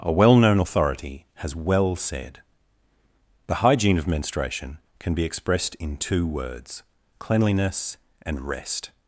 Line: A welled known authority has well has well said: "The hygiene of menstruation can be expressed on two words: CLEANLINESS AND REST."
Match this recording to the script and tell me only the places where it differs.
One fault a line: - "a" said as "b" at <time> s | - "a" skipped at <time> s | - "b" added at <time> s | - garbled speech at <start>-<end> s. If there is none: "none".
- "welled" said as "well" at 0.1 s
- "has well" skipped at 2.0 s
- "on" said as "in" at 5.7 s